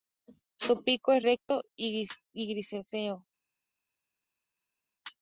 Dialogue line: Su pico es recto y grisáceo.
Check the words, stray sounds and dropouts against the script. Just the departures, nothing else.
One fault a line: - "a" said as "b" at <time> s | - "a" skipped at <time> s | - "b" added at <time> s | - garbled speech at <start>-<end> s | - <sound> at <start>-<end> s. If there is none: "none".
none